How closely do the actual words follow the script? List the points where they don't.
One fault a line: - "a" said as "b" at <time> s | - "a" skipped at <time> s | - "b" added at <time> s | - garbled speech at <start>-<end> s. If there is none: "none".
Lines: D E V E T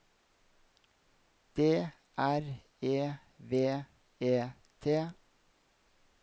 - "R" added at 2.2 s